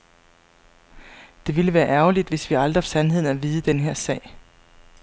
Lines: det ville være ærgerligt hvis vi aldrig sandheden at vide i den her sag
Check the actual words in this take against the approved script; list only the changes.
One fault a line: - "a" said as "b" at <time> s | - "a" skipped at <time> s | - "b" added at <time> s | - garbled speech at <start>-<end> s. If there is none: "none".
none